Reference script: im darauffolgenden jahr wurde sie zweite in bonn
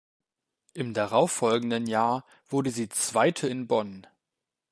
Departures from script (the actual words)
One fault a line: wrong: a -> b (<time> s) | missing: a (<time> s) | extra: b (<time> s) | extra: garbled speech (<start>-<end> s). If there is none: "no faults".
no faults